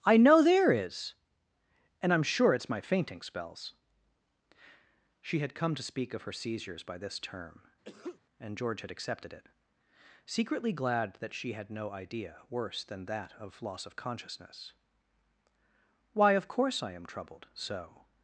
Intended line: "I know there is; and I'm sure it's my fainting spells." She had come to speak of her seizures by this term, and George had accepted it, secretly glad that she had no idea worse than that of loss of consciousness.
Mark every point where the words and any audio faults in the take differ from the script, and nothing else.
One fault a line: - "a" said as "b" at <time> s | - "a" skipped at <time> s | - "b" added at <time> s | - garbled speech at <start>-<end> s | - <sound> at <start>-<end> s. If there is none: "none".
- sneeze at 7.8-8.2 s
- "Why of course I am troubled so" added at 16.1 s